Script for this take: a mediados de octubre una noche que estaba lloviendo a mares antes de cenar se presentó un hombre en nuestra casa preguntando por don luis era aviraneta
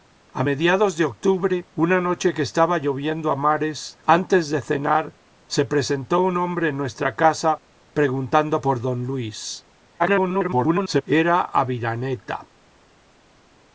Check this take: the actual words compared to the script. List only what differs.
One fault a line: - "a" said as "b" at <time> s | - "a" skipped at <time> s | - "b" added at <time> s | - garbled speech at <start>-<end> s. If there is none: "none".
- garbled speech at 10.0-11.0 s